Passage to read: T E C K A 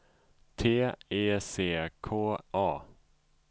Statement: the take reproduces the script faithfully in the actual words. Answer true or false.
true